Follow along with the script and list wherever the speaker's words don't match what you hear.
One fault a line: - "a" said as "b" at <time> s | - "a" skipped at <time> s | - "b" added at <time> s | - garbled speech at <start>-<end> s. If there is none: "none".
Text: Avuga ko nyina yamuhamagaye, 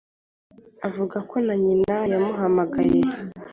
- "na" added at 1.4 s